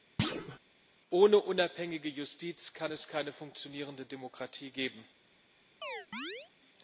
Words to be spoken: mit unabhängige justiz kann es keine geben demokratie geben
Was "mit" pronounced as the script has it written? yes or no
no